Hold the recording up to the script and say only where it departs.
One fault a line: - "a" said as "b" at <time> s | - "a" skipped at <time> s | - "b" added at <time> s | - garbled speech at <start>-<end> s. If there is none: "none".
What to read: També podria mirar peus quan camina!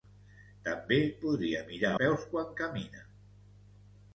none